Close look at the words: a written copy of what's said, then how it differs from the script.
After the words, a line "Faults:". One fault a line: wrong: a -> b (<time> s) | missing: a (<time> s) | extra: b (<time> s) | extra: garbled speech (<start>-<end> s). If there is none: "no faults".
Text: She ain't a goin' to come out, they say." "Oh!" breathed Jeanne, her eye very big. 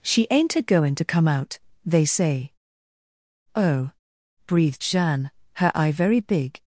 She ain't a goin' to come out, they say." "Oh!" breathed Jeanne, her eye very big.
Faults:
no faults